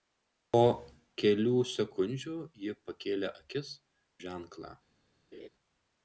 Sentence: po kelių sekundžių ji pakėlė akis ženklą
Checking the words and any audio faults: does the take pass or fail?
fail